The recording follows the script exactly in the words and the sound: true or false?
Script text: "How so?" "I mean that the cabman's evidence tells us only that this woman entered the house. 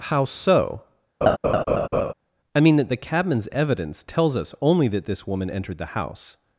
false